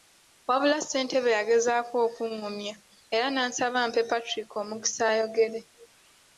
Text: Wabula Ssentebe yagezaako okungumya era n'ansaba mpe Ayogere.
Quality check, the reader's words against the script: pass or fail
fail